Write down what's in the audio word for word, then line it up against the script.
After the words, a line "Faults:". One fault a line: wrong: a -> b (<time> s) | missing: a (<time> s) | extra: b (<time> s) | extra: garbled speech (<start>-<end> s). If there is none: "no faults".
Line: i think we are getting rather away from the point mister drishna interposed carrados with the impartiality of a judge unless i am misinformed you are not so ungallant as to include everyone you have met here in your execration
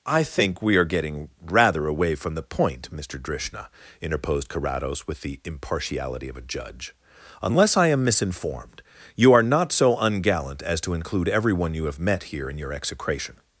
i think we are getting rather away from the point mister drishna interposed carrados with the impartiality of a judge unless i am misinformed you are not so ungallant as to include everyone you have met here in your execration
Faults:
no faults